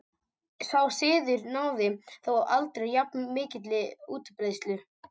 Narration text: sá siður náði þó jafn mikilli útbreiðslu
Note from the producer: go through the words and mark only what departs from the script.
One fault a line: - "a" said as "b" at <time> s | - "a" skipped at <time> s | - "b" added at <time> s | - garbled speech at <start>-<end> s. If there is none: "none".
- "aldrei" added at 2.6 s